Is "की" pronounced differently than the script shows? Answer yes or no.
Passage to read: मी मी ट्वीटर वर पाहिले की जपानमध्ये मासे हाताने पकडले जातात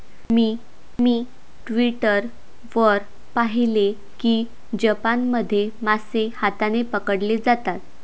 no